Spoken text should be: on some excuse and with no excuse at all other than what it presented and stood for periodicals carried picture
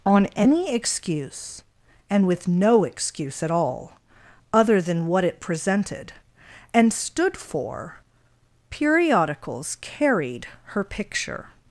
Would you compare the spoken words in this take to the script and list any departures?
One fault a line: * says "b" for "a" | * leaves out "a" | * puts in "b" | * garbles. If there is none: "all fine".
* says "any" for "some"
* puts in "her"